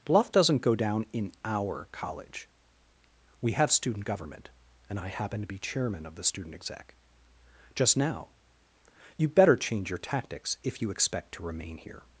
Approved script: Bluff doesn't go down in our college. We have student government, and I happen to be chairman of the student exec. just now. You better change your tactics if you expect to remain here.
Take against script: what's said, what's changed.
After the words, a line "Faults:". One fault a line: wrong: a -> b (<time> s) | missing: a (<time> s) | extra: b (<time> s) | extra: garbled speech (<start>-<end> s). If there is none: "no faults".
Bluff doesn't go down in our college. We have student government, and I happen to be chairman of the student exec. just now. You better change your tactics if you expect to remain here.
Faults:
no faults